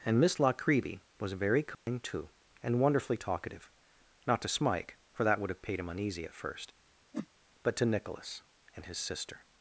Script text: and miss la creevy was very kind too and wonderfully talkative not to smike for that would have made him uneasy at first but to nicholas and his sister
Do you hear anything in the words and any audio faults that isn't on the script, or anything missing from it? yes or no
yes